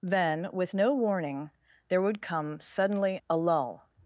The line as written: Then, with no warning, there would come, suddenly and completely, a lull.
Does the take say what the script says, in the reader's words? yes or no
no